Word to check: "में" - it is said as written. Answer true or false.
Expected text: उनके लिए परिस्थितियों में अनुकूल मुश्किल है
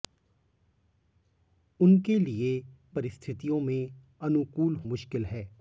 true